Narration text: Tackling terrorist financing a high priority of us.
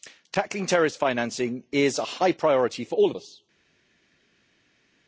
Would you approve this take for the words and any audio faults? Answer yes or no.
no